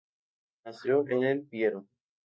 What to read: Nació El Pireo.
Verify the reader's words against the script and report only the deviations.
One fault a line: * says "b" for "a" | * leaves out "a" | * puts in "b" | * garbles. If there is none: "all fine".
* puts in "en"